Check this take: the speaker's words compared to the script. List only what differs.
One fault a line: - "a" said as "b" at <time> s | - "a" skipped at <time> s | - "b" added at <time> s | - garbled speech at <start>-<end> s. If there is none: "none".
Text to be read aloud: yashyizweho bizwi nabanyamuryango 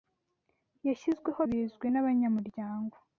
none